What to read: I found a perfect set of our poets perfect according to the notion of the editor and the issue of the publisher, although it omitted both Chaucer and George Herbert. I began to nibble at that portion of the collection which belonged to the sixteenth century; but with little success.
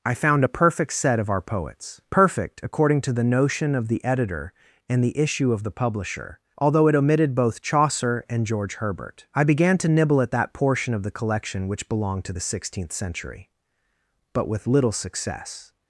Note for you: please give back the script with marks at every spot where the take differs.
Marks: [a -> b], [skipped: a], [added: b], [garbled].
I found a perfect set of our poets perfect according to the notion of the editor and the issue of the publisher, although it omitted both Chaucer and George Herbert. I began to nibble at that portion of the collection which belonged to the sixteenth century; but with little success.